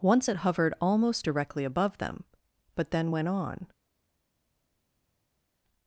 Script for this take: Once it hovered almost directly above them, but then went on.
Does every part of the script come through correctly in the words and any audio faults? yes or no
yes